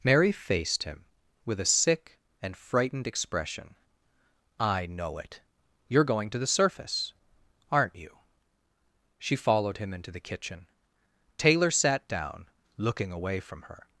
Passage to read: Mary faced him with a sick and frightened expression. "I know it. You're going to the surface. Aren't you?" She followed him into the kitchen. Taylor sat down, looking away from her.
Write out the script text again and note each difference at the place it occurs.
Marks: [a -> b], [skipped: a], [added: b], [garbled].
Mary faced him with a sick and frightened expression. "I know it. You're going to the surface. Aren't you?" She followed him into the kitchen. Taylor sat down, looking away from her.